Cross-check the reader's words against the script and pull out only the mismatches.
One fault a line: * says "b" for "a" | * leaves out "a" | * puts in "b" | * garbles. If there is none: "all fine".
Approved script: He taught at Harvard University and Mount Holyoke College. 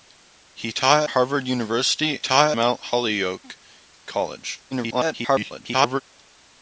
* leaves out "at"
* says "taught" for "and"
* garbles